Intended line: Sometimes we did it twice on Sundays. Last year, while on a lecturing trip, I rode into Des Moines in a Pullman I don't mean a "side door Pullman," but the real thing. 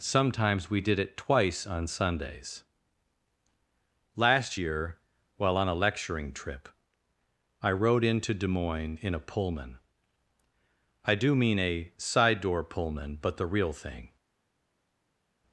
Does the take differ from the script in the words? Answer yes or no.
yes